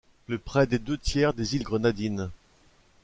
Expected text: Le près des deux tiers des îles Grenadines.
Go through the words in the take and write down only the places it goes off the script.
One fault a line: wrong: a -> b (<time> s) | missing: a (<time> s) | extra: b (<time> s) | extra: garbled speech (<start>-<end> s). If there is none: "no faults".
no faults